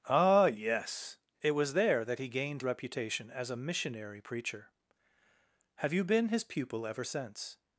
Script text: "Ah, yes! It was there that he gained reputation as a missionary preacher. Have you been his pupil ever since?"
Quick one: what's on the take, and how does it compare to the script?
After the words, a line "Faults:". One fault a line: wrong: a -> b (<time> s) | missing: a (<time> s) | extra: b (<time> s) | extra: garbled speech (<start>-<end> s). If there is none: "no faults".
"Ah, yes! It was there that he gained reputation as a missionary preacher. Have you been his pupil ever since?"
Faults:
no faults